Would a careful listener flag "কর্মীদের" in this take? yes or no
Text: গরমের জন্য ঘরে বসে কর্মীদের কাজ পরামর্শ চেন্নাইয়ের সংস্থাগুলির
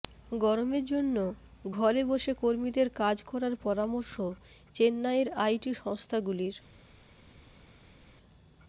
no